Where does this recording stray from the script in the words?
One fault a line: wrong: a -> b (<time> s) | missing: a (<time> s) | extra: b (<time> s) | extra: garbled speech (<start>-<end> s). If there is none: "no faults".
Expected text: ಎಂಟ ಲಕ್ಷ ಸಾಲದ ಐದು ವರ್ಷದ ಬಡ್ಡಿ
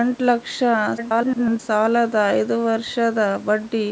extra: garbled speech (1.0-1.6 s)